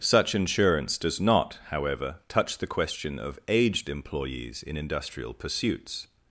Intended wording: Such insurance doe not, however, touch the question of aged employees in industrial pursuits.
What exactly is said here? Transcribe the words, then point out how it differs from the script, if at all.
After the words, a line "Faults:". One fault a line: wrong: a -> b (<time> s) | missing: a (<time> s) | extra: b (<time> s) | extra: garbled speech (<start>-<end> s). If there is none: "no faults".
Such insurance does not, however, touch the question of aged employees in industrial pursuits.
Faults:
wrong: doe -> does (1.0 s)